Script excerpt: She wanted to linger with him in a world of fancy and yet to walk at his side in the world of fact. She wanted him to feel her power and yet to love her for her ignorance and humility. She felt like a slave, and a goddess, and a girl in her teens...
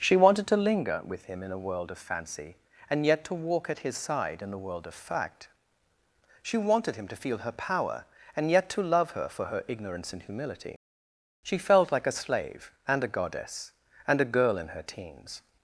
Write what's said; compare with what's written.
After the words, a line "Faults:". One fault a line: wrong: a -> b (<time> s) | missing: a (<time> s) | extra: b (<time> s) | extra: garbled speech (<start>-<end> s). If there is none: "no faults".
She wanted to linger with him in a world of fancy and yet to walk at his side in the world of fact. She wanted him to feel her power and yet to love her for her ignorance and humility. She felt like a slave, and a goddess, and a girl in her teens...
Faults:
no faults